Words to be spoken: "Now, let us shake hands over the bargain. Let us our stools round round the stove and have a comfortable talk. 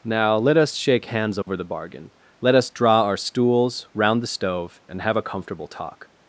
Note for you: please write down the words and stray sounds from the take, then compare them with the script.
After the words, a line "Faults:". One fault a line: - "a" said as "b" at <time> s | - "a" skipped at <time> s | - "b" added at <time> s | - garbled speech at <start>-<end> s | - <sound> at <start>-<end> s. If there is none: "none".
"Now, let us shake hands over the bargain. Let us draw our stools round the stove and have a comfortable talk.
Faults:
- dropout at 1.4-1.5 s
- "draw" added at 2.7 s
- "round" skipped at 4.2 s